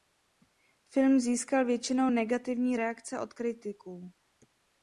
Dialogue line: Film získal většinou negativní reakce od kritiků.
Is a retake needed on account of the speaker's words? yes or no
no